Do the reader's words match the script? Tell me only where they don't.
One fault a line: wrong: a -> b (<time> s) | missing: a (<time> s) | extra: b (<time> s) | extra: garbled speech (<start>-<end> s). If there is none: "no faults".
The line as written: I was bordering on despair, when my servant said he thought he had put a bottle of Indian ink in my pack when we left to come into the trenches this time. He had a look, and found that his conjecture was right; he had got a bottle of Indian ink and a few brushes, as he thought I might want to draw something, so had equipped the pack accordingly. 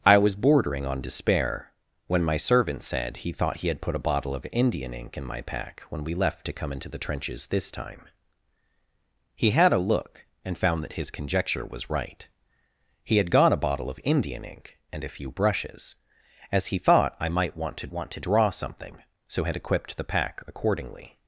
extra: want to (17.9 s)